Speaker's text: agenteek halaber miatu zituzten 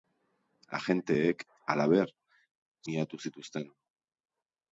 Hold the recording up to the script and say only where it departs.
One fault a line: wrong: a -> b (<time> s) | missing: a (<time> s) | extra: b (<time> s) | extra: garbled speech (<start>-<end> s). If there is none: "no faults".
no faults